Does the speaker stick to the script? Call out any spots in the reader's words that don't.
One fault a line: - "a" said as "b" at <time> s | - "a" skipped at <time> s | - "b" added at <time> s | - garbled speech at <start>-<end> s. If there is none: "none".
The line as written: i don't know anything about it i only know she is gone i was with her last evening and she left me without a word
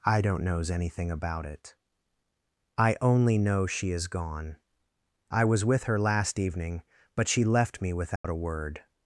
- "know" said as "knows" at 0.4 s
- "and" said as "but" at 7.2 s